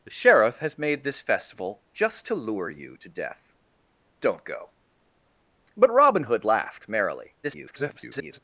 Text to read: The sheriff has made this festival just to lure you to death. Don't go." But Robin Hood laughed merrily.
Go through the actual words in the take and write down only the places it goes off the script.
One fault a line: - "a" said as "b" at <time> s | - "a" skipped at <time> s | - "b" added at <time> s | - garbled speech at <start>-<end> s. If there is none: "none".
- garbled speech at 7.4-8.4 s